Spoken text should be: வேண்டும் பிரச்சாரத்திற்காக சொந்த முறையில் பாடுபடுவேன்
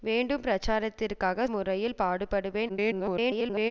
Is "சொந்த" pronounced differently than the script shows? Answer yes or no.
yes